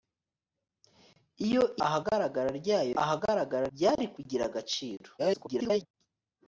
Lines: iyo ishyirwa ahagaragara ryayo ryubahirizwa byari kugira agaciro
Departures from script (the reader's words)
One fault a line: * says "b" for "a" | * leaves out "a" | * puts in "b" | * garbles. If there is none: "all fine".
* leaves out "ishyirwa"
* says "ahagaragara" for "ryubahirizwa"
* garbles